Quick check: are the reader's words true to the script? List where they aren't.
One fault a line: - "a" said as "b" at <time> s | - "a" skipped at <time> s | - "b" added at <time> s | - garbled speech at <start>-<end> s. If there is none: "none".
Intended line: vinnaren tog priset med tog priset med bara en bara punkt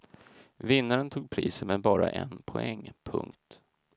- "tog priset med" skipped at 1.8 s
- "bara" said as "poäng" at 2.5 s